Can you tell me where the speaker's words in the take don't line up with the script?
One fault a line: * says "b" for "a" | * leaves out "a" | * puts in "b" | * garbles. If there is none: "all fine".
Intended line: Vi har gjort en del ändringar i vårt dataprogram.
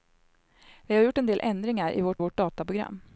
* puts in "vårt"